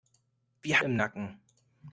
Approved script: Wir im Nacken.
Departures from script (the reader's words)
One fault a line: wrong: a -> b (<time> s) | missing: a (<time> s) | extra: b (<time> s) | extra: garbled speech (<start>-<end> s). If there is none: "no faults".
no faults